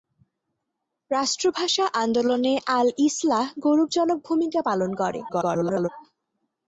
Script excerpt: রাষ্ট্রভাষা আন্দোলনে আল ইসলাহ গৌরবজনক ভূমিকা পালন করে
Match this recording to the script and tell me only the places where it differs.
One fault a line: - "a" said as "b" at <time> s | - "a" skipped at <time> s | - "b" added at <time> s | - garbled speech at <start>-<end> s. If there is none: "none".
- garbled speech at 5.3-5.9 s